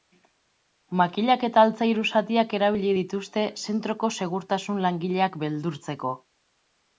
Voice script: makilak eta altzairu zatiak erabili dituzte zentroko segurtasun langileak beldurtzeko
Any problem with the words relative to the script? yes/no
no